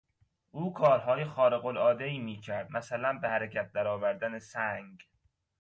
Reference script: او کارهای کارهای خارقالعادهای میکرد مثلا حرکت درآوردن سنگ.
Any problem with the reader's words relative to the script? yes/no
yes